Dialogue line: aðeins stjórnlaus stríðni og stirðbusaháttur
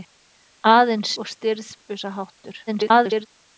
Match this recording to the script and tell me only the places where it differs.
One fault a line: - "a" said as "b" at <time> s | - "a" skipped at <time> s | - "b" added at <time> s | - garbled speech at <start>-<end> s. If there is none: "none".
- "stjórnlaus stríðni" skipped at 1.1 s
- garbled speech at 2.7-3.3 s